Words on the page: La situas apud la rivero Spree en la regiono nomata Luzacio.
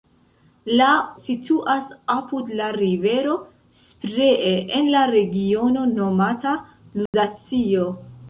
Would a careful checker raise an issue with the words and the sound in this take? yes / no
yes